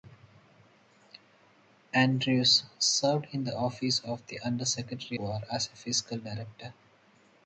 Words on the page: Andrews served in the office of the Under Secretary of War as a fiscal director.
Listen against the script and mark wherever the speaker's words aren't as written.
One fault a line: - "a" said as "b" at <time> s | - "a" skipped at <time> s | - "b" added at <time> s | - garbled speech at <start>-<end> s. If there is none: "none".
- "of" skipped at 5.2 s